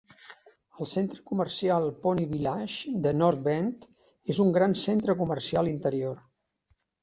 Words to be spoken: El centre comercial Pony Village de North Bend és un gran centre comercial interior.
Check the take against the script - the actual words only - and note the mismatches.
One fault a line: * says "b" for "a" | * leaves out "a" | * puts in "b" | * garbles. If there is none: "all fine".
all fine